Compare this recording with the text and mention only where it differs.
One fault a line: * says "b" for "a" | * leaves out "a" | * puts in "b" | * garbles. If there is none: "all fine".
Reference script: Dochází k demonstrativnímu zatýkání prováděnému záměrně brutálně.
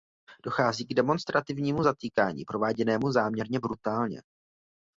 all fine